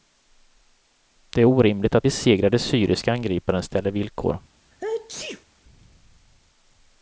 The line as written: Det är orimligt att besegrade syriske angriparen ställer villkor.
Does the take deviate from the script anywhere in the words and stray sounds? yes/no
yes